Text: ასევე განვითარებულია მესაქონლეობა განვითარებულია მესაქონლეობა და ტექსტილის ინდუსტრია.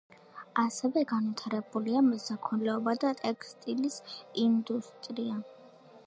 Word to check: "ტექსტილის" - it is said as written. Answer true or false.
true